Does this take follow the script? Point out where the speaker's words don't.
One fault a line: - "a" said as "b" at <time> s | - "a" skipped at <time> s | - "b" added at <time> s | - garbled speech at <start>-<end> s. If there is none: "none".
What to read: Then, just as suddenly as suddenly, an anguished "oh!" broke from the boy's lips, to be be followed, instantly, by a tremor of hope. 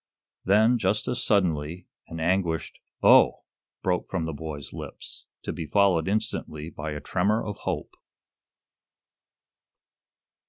- "as suddenly" skipped at 1.9 s
- "be" skipped at 5.7 s